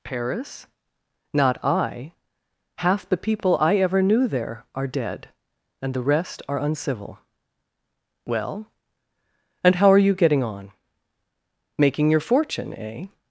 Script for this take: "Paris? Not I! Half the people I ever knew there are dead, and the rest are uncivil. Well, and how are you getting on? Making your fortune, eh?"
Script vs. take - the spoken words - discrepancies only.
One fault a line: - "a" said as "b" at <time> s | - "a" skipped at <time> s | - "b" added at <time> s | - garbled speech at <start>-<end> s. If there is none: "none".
none